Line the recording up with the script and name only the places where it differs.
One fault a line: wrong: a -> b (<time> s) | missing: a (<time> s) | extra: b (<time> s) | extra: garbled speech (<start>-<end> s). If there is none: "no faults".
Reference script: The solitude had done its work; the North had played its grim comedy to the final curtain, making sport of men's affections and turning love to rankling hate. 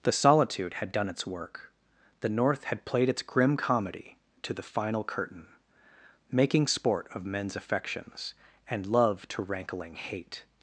missing: turning (8.9 s)